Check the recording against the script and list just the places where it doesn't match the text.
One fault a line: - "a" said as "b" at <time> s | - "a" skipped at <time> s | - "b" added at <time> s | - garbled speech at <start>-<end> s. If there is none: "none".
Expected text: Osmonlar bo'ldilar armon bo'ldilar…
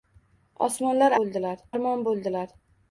none